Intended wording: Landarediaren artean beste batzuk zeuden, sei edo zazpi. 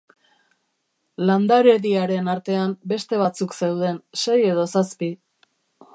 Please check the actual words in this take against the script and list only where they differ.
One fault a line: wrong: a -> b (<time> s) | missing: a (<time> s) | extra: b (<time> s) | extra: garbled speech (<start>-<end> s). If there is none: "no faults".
no faults